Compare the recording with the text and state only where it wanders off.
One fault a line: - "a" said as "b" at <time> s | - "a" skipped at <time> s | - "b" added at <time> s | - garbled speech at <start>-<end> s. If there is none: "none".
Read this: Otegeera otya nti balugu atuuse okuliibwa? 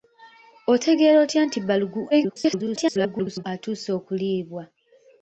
- garbled speech at 2.1-3.4 s